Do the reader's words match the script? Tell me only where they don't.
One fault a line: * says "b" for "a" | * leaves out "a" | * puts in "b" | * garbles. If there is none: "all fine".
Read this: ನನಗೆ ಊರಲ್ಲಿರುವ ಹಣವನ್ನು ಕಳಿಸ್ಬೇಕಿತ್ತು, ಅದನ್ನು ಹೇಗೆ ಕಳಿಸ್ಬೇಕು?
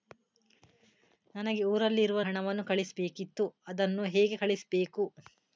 all fine